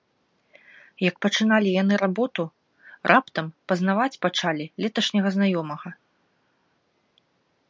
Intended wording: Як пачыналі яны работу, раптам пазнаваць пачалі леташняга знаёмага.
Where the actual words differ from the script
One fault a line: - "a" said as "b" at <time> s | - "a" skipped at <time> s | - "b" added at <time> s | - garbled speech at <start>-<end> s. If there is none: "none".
none